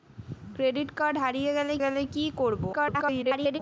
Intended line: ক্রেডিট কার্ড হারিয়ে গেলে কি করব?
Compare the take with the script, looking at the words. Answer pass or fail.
fail